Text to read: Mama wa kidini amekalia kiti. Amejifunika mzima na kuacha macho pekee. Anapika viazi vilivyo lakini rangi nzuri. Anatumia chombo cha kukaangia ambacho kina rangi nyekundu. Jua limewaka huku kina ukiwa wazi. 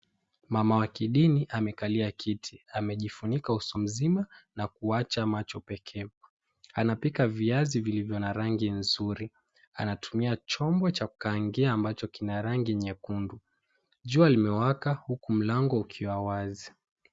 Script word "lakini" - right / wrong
wrong